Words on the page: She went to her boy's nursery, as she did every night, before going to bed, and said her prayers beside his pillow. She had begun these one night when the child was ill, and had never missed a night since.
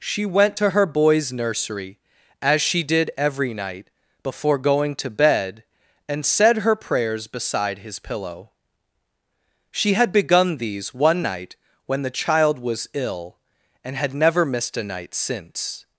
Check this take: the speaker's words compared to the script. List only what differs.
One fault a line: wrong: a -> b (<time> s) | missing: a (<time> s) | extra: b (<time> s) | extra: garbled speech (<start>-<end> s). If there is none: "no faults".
no faults